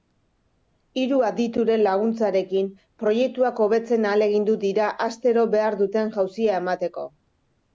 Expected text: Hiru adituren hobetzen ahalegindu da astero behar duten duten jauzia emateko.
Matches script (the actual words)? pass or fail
fail